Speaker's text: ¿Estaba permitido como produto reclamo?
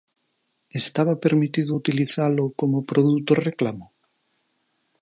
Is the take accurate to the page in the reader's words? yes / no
no